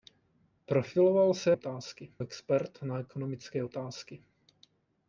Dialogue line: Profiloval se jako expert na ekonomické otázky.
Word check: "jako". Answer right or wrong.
wrong